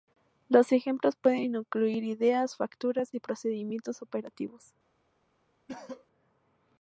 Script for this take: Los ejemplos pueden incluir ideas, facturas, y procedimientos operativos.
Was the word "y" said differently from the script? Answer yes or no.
no